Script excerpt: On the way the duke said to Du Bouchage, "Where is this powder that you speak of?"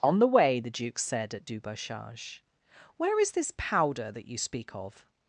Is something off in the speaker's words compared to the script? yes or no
yes